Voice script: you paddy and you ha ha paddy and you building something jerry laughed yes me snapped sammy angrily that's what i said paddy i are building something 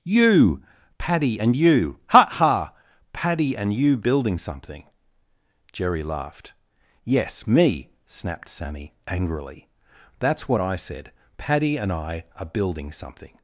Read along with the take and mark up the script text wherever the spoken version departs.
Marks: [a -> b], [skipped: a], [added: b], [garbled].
you paddy and you ha ha paddy and you building something jerry laughed yes me snapped sammy angrily that's what i said paddy [added: and] i are building something